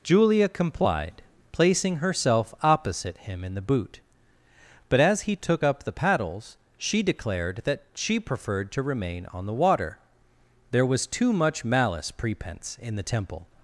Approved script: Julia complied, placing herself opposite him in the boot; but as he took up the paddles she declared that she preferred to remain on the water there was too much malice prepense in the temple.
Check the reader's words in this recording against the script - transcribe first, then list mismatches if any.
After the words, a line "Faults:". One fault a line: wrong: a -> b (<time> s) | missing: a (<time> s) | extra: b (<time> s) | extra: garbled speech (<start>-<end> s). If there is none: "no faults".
Julia complied, placing herself opposite him in the boot; but as he took up the paddles she declared that she preferred to remain on the water there was too much malice prepense in the temple.
Faults:
no faults